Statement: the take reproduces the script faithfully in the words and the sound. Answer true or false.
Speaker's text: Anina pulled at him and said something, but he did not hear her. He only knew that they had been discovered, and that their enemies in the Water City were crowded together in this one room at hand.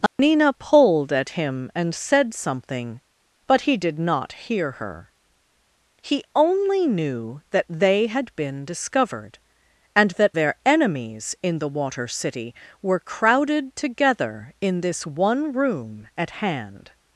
false